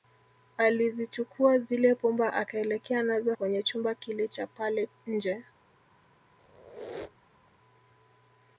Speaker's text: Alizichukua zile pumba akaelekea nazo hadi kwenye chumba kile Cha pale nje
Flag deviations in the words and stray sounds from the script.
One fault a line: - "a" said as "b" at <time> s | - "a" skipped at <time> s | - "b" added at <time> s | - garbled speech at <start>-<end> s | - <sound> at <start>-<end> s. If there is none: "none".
- "hadi" skipped at 3.3 s
- squeak at 6.4-7.5 s